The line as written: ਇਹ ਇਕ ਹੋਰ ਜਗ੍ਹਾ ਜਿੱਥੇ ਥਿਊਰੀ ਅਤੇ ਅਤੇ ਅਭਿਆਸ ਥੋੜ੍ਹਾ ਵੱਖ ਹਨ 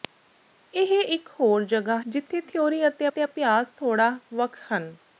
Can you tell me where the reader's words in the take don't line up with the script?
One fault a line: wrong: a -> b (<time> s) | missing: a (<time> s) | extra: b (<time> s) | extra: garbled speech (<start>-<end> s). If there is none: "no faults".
no faults